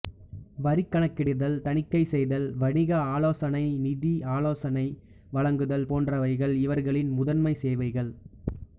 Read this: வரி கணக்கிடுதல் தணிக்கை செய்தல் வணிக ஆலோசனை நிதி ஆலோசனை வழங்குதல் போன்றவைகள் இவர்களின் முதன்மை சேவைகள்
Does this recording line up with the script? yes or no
yes